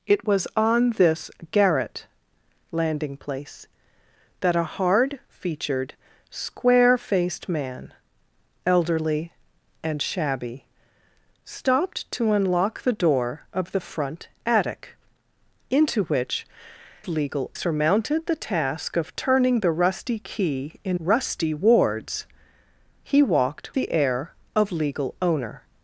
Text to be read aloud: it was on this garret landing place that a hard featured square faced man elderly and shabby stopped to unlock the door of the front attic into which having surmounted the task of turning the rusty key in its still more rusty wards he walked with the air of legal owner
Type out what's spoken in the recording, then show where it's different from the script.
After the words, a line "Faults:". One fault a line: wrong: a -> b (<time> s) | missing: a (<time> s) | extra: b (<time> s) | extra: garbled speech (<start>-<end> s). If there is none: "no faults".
it was on this garret landing place that a hard featured square faced man elderly and shabby stopped to unlock the door of the front attic into which legal surmounted the task of turning the rusty key in rusty wards he walked the air of legal owner
Faults:
wrong: having -> legal (17.1 s)
missing: its still more (21.0 s)
missing: with (23.7 s)